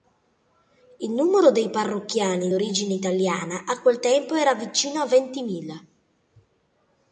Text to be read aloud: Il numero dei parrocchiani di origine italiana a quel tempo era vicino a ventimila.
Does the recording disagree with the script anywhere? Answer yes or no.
yes